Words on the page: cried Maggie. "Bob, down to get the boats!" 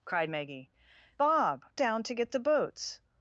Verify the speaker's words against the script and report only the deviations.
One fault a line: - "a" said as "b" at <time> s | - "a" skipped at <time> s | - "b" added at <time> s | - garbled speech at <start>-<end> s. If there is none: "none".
none